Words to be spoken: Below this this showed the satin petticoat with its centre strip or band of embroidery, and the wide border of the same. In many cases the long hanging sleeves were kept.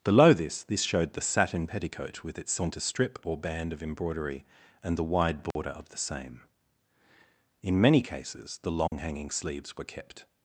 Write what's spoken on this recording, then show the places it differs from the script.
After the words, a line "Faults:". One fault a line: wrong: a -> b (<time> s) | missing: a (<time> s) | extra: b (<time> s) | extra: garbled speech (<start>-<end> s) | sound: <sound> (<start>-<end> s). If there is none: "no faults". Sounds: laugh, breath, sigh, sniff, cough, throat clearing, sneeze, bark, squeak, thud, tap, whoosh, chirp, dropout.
Below this this showed the satin petticoat with its centre strip or band of embroidery, and the wide border of the same. In many cases the long hanging sleeves were kept.
Faults:
sound: dropout (5.5-5.6 s)
sound: dropout (8.9-8.9 s)